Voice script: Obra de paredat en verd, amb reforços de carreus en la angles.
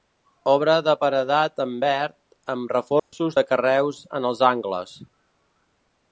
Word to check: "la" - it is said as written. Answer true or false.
false